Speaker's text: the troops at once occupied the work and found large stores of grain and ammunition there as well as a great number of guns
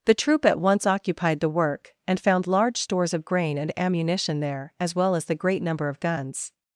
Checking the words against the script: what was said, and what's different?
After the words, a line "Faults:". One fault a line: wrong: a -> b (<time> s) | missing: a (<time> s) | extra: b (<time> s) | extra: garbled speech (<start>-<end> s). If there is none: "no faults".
the troop at once occupied the work and found large stores of grain and ammunition there as well as the great number of guns
Faults:
wrong: troops -> troop (0.1 s)
wrong: a -> the (5.2 s)